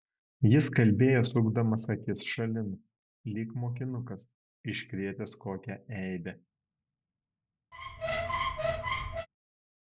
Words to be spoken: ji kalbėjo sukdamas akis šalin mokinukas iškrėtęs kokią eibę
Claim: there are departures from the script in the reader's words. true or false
true